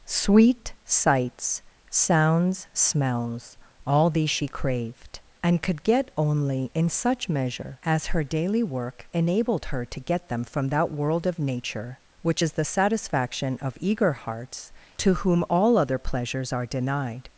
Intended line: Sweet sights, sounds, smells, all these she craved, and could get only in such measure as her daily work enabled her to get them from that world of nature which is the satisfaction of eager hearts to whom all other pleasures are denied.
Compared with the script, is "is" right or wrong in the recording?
right